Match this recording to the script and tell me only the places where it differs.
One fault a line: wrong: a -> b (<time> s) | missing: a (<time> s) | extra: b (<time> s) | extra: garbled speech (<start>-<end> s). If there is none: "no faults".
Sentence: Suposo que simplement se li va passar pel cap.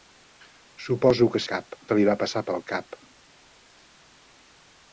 wrong: simplement -> cap (1.5 s)